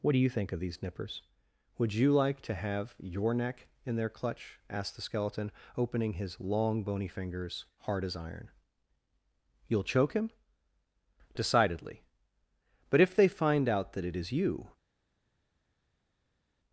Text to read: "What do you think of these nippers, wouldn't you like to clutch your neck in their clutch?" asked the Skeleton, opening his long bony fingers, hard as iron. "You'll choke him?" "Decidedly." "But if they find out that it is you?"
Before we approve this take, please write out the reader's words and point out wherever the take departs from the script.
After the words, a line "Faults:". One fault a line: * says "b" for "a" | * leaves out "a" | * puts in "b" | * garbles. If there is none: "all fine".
"What do you think of these nippers, would you like to have your neck in their clutch?" asked the Skeleton, opening his long bony fingers, hard as iron. "You'll choke him?" "Decidedly." "But if they find out that it is you?"
Faults:
* says "would" for "wouldn't"
* says "have" for "clutch"